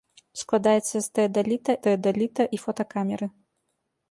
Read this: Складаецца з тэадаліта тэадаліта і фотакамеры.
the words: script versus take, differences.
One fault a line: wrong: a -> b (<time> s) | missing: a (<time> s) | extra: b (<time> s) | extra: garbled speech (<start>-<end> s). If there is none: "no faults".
no faults